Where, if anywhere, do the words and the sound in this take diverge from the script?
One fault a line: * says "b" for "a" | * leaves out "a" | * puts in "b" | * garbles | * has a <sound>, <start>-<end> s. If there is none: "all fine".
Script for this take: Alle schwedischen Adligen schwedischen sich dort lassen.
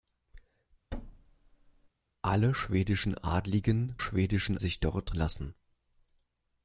* has a thud, 0.9-1.9 s